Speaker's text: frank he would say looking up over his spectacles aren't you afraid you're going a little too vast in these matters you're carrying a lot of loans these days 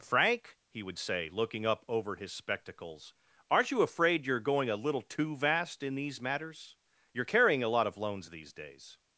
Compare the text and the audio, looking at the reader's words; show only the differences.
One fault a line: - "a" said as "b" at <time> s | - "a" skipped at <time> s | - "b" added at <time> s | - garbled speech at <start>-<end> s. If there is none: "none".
none